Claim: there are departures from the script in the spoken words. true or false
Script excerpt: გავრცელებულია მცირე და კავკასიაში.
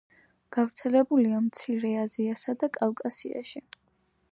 true